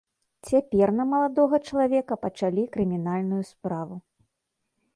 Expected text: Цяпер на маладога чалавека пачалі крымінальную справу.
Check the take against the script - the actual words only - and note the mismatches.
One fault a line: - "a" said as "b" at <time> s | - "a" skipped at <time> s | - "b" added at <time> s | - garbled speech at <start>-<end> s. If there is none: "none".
none